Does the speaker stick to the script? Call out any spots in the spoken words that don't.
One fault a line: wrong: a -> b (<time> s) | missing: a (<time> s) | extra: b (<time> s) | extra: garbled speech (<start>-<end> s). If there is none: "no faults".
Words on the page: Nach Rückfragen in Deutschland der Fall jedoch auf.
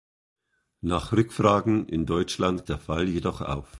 no faults